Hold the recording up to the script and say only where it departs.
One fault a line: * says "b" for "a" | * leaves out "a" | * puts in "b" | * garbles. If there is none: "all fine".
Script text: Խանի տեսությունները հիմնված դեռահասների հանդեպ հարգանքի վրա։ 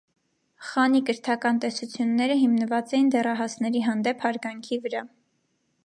* puts in "կրթական"
* puts in "էին"